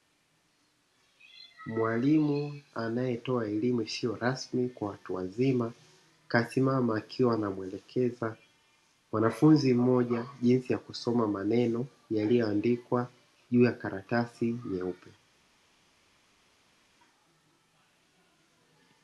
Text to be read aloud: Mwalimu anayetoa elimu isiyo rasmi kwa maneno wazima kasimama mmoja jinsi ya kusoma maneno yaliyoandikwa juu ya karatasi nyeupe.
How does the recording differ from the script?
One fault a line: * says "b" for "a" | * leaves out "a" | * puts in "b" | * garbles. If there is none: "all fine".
* says "watu" for "maneno"
* puts in "akiwa anamuelekeza mwanafunzi"